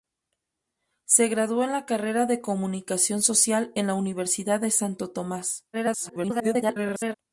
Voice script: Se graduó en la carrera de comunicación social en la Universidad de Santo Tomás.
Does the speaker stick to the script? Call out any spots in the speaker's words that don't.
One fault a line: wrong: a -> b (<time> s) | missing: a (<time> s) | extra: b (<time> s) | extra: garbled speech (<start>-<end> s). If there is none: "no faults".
extra: garbled speech (5.7-7.1 s)